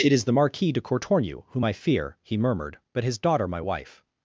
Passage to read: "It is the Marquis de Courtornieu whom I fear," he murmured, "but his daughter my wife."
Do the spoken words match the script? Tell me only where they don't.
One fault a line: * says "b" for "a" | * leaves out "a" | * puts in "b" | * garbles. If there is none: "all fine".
all fine